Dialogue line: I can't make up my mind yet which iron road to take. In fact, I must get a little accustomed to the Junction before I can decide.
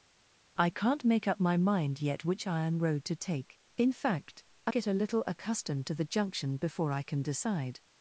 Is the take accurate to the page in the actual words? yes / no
no